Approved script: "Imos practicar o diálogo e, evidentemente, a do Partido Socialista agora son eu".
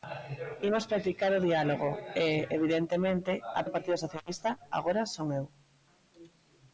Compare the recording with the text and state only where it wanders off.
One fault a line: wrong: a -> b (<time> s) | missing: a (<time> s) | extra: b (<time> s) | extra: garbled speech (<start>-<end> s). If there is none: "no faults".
no faults